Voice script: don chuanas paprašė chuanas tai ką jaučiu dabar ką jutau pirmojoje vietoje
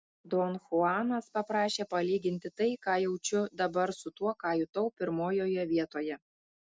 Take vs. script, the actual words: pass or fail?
fail